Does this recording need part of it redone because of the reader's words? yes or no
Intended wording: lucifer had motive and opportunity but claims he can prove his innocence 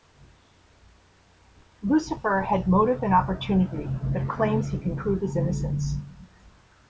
no